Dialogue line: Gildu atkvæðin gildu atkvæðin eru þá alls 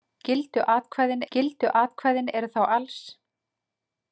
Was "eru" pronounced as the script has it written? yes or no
yes